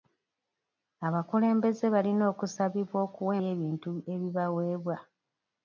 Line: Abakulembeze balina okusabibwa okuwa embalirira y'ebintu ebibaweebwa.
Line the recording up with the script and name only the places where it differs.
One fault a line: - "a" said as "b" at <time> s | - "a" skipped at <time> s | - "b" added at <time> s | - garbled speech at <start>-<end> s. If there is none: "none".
- "embalirira" skipped at 3.3 s